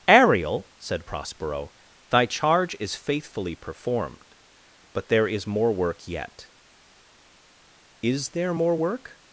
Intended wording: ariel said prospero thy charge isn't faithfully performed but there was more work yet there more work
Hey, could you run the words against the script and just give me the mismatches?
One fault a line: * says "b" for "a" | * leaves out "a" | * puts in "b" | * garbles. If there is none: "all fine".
* says "is" for "isn't"
* says "is" for "was"
* puts in "is"